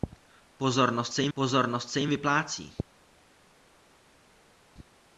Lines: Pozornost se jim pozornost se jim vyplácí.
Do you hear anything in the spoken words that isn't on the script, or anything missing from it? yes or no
no